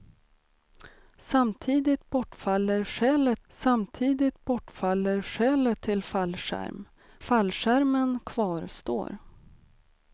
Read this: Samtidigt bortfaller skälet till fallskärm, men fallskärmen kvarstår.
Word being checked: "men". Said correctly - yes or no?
no